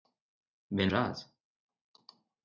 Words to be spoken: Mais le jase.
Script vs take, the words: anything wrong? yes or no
no